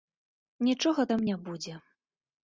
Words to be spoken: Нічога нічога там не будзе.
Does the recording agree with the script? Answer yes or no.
no